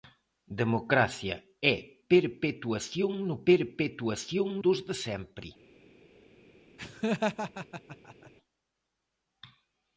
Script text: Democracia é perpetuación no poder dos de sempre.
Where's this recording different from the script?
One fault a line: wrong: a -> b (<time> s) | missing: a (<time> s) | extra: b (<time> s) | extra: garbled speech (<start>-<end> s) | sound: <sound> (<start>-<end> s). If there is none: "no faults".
wrong: poder -> perpetuación (3.5 s)
sound: laugh (6.8-8.3 s)